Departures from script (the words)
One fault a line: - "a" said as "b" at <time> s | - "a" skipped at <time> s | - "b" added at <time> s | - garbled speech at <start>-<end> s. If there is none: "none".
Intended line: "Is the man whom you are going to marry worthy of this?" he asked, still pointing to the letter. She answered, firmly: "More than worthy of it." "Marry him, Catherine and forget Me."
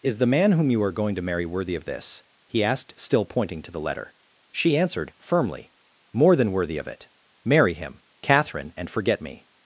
none